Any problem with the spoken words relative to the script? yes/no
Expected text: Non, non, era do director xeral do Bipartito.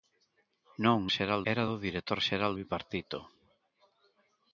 yes